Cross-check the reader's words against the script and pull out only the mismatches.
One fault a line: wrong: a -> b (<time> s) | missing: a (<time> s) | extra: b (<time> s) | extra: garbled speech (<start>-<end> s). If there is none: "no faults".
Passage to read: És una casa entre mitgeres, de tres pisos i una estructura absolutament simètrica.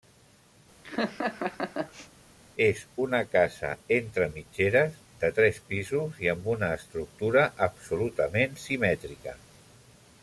extra: amb (6.4 s)